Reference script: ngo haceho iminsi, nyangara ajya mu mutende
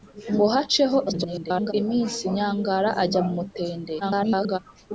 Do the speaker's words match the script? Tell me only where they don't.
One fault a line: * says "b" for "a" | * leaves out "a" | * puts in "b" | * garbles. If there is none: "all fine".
* garbles
* garbles